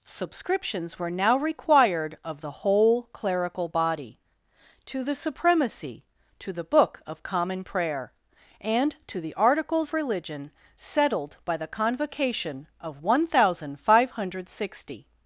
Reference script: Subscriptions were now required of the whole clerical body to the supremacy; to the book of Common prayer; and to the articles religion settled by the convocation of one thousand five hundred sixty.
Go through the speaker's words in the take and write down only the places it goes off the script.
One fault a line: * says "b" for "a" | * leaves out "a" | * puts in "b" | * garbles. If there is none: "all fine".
all fine